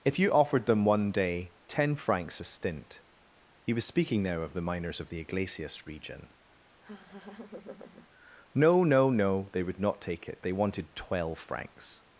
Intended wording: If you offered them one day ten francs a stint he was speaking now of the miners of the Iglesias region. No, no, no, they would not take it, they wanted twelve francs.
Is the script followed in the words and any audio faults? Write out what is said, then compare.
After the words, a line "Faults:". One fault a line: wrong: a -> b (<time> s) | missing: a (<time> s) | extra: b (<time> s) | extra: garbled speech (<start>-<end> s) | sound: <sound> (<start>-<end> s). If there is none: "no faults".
If you offered them one day ten francs a stint he was speaking now of the miners of the Iglesias region. No, no, no, they would not take it, they wanted twelve francs.
Faults:
sound: laugh (6.8-8.1 s)